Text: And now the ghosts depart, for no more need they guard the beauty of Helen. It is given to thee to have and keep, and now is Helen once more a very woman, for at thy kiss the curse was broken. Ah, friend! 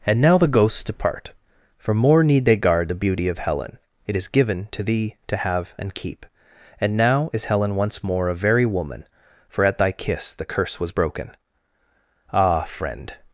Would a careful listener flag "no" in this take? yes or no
yes